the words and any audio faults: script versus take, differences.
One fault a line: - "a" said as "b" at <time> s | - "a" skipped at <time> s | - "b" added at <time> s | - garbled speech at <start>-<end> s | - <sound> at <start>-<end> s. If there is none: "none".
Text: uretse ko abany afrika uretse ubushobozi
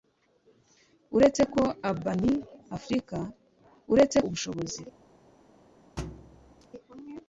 - thud at 6.0-6.7 s